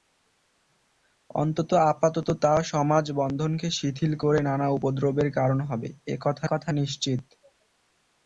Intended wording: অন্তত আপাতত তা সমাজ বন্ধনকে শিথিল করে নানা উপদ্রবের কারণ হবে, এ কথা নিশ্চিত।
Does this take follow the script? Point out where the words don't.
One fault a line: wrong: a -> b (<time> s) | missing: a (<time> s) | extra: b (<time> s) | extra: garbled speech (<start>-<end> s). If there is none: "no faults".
extra: কথা (6.5 s)